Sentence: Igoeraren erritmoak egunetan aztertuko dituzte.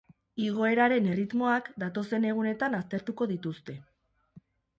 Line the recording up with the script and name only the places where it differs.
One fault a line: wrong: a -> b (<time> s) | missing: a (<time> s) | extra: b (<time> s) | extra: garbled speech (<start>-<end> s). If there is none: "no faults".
extra: datozen (1.9 s)